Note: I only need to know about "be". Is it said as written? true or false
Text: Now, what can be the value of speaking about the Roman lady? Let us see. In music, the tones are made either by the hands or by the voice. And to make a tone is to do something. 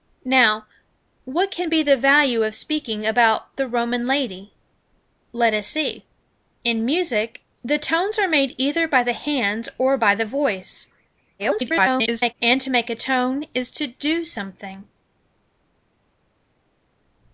true